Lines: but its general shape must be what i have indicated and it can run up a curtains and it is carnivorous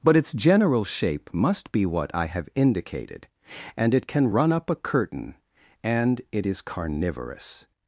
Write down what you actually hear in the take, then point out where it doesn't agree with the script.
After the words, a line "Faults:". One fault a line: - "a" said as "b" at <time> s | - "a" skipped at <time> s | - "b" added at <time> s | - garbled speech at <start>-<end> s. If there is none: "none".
but its general shape must be what i have indicated and it can run up a curtain and it is carnivorous
Faults:
- "curtains" said as "curtain" at 4.8 s